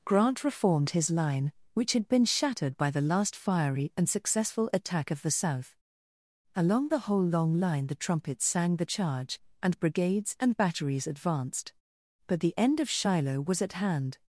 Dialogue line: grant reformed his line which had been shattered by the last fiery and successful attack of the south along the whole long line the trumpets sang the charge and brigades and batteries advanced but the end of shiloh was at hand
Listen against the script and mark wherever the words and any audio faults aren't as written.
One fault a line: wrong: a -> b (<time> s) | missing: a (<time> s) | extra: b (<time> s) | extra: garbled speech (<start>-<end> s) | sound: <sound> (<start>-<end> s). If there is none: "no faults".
no faults